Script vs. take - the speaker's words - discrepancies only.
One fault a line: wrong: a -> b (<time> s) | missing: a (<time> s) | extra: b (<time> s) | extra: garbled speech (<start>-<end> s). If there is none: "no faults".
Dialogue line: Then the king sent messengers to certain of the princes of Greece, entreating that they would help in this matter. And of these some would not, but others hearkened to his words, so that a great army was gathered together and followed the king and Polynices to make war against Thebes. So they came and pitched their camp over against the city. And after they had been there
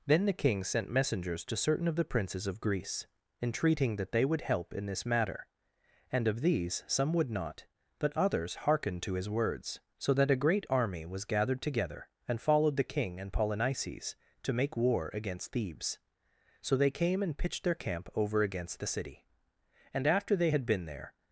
no faults